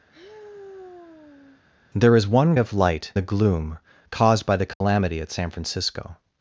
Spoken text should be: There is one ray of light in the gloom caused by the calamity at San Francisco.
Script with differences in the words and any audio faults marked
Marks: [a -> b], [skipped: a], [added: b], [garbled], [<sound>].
[sigh] There is one [skipped: ray] of light [skipped: in] the gloom caused by the calamity [dropout] at San Francisco.